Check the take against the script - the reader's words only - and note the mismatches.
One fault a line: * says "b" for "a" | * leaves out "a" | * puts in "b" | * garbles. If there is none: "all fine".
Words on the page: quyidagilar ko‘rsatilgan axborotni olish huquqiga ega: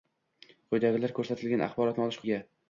* leaves out "huquqiga"